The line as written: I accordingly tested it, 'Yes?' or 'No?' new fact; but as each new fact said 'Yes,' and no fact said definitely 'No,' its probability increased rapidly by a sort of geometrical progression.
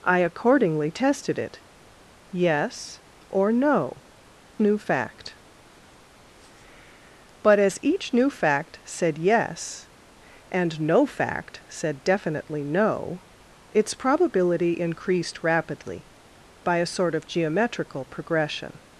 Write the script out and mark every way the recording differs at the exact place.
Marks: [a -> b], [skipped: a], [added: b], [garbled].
I accordingly tested it, 'Yes?' or 'No?' new fact; but as each new fact said 'Yes,' and no fact said definitely 'No,' its probability increased rapidly by a sort of geometrical progression.